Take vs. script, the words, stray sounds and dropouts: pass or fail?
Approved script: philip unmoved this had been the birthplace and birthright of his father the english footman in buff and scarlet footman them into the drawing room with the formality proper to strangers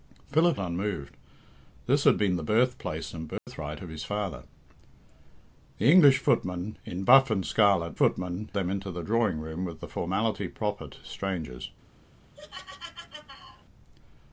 fail